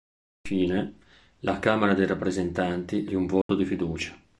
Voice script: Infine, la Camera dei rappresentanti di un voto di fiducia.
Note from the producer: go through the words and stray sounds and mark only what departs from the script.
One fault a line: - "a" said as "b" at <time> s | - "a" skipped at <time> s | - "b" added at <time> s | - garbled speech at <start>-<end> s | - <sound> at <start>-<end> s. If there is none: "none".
- dropout at 3.4-3.5 s